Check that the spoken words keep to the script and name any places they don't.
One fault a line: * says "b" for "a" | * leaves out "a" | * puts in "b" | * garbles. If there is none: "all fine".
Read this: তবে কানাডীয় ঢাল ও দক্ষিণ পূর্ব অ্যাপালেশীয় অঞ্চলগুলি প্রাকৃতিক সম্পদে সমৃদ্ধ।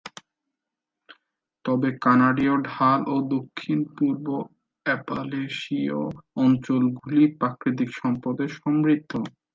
all fine